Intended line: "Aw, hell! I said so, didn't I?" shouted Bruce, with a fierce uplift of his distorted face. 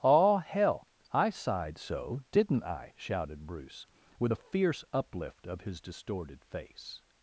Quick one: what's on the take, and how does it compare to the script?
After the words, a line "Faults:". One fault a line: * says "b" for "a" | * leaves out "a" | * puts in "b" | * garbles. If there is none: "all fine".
"Aw, hell! I sighed so, didn't I?" shouted Bruce, with a fierce uplift of his distorted face.
Faults:
* says "sighed" for "said"